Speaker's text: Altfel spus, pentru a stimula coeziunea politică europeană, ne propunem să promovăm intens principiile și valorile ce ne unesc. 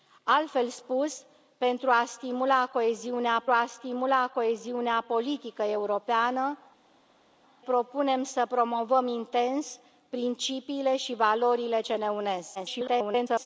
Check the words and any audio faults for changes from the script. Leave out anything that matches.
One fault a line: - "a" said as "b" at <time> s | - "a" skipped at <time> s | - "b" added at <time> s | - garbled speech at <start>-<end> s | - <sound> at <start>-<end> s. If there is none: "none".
- "a stimula coeziunea" added at 3.5 s
- "ne" skipped at 6.6 s
- garbled speech at 12.6-13.5 s